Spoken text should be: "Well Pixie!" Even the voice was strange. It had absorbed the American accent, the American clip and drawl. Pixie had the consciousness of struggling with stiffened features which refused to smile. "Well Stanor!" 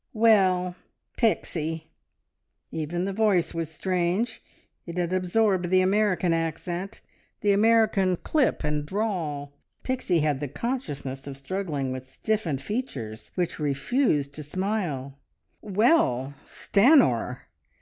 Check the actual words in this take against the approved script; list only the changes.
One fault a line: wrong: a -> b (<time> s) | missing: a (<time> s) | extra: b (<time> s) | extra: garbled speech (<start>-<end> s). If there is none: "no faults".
no faults